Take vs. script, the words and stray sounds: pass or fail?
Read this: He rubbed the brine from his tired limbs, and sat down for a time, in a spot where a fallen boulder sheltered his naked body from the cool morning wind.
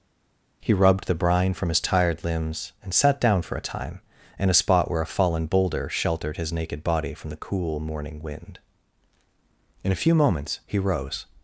fail